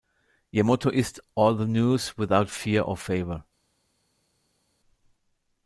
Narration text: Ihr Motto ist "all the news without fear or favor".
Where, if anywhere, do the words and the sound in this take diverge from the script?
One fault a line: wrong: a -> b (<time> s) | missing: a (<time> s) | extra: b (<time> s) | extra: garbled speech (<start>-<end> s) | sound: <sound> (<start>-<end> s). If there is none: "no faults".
no faults